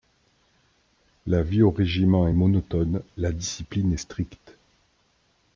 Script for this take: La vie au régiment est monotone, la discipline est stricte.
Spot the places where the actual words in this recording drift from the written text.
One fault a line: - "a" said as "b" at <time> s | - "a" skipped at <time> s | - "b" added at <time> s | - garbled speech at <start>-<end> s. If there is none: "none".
none